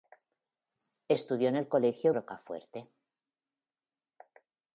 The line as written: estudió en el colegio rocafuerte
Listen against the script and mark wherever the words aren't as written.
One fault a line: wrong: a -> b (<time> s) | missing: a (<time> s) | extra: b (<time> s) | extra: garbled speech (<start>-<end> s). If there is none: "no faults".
no faults